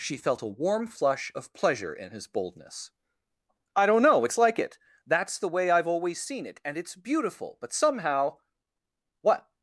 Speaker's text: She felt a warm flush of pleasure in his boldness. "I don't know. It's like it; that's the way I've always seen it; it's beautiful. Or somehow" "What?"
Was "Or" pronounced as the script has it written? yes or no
no